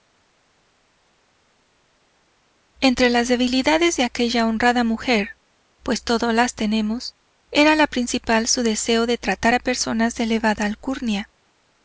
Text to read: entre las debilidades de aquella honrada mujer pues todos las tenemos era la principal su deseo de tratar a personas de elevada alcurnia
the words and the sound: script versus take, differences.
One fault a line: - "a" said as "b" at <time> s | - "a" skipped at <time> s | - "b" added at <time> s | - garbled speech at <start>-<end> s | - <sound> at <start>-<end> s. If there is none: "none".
none